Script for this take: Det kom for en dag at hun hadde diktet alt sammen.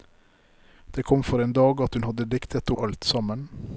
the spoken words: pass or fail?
pass